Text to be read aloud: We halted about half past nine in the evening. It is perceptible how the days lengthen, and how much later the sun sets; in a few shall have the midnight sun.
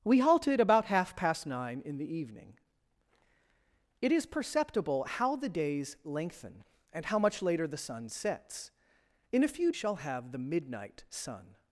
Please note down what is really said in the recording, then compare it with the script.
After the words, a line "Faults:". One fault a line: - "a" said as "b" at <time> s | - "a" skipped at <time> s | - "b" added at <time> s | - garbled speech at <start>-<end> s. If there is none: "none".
We halted about half past nine in the evening. It is perceptible how the days lengthen, and how much later the sun sets; in a few shall have the midnight sun.
Faults:
none